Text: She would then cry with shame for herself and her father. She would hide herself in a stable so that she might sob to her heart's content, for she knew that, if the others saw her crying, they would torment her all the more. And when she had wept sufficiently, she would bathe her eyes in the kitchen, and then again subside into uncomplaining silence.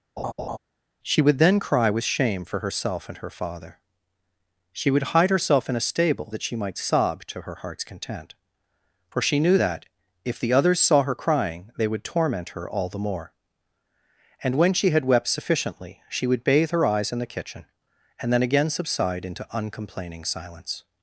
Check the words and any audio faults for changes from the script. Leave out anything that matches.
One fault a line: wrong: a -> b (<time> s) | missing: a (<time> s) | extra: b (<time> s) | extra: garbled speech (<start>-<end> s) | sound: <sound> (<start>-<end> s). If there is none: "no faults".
sound: laugh (0.2-0.6 s)
missing: so (6.3 s)